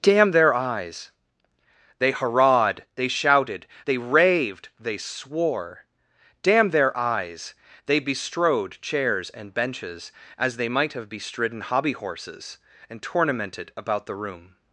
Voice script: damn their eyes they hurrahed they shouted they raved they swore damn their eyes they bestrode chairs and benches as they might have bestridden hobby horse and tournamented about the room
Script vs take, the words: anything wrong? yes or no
yes